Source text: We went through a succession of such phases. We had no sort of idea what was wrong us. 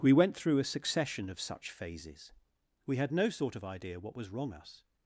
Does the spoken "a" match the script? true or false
true